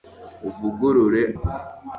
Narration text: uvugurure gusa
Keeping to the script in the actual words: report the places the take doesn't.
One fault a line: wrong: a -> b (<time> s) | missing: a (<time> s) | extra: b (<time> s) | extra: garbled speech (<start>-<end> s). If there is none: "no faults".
no faults